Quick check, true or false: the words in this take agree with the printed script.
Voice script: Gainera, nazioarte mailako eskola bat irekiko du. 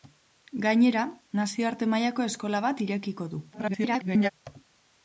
false